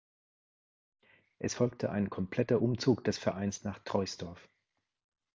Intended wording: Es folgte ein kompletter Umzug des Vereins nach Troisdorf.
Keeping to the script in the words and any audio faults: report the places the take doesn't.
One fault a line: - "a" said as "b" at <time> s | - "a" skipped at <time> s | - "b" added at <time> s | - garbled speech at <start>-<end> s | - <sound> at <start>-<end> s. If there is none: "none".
none